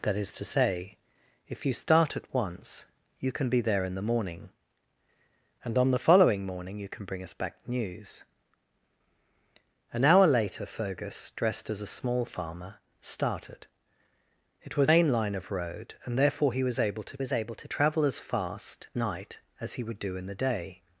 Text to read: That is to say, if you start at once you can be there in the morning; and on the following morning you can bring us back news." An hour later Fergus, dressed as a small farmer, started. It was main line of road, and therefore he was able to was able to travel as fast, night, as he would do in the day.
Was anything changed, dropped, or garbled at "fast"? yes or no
no